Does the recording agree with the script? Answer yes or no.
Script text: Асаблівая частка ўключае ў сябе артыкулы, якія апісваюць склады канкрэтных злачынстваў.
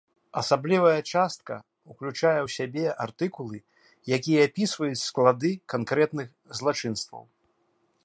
yes